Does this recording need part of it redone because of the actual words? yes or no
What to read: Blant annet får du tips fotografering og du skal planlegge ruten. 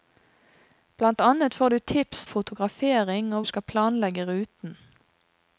no